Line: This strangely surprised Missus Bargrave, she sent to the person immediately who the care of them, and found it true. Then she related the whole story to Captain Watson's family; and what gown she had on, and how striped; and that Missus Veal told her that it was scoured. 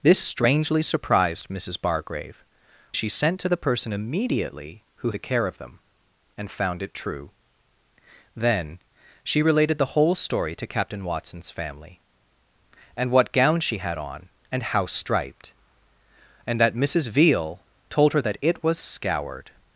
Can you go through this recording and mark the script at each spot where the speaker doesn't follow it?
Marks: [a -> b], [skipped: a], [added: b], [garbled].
This strangely surprised Missus Bargrave, she sent to the person immediately who the care of them, and found it true. Then she related the whole story to Captain Watson's family; and what gown she had on, and how striped; and that Missus Veal told her that it was scoured.